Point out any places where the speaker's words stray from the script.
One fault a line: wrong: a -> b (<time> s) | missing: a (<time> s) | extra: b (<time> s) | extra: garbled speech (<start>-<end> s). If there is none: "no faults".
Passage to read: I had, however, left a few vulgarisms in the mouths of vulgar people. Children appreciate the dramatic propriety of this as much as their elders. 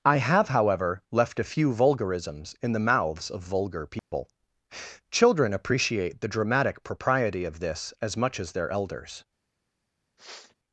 wrong: had -> have (0.2 s)